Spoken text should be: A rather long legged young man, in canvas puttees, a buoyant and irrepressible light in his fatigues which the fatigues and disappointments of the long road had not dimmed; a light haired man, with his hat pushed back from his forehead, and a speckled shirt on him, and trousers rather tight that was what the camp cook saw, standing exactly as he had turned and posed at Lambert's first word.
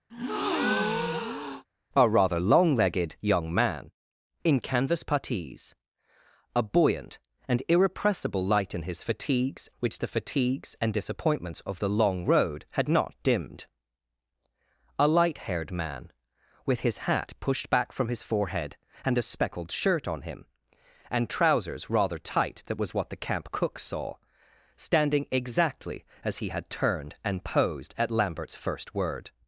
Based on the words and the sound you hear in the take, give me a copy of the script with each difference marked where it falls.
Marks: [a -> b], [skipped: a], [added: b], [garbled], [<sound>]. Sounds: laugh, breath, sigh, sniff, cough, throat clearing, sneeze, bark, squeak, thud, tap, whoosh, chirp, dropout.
[breath] A rather long legged young man, in canvas puttees, a buoyant and irrepressible light in his fatigues which the fatigues and disappointments of the long road had not dimmed; a light haired man, with his hat pushed back from his forehead, and a speckled shirt on him, and trousers rather tight that was what the camp cook saw, standing exactly as he had turned and posed at Lambert's first word.